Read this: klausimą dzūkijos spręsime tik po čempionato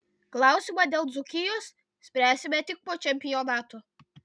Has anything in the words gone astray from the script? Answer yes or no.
yes